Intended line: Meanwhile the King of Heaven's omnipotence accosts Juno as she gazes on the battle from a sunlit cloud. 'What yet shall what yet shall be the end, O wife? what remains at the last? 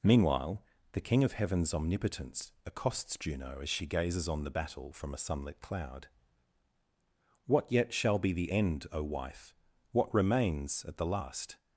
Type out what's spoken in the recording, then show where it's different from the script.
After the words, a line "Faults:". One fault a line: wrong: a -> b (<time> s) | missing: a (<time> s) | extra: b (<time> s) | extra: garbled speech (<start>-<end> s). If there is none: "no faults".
Meanwhile the King of Heaven's omnipotence accosts Juno as she gazes on the battle from a sunlit cloud. 'What yet shall be the end, O wife? what remains at the last?
Faults:
missing: what yet shall (8.2 s)